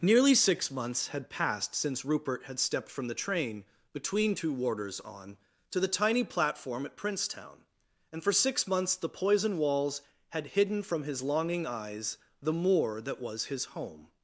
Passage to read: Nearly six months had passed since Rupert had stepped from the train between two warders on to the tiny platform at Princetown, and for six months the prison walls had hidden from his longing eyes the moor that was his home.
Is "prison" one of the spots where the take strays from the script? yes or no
yes